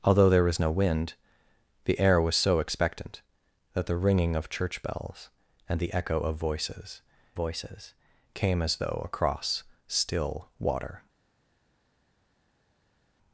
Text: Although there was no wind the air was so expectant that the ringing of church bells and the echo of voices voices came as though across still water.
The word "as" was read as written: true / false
true